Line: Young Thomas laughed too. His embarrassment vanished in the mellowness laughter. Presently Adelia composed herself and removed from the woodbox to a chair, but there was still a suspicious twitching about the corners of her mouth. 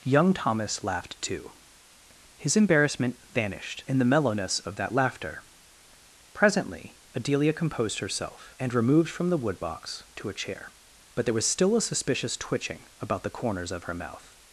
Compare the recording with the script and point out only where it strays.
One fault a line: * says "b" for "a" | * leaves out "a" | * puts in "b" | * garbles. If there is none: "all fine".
* puts in "of that"